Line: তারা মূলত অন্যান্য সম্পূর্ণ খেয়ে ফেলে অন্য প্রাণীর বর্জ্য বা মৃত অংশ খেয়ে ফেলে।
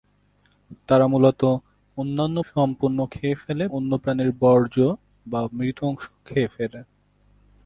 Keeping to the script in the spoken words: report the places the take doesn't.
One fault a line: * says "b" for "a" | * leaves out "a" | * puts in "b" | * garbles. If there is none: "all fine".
all fine